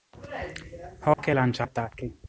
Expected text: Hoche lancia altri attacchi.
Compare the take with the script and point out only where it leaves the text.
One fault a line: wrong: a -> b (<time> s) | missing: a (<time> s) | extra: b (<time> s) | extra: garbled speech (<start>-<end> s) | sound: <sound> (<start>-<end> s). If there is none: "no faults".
sound: dropout (1.1-1.2 s)
missing: altri (1.7 s)